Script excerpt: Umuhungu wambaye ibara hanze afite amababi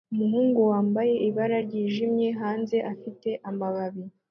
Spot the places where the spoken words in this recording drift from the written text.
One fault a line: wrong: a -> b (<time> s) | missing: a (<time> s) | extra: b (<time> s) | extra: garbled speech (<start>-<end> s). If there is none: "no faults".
extra: ryijimye (1.7 s)